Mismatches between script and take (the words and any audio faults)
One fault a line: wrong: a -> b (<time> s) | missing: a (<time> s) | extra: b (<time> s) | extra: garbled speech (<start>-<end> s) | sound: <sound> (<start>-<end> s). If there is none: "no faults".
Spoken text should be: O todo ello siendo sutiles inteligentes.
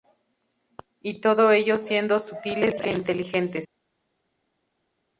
wrong: O -> Y (1.0 s)
extra: e (2.8 s)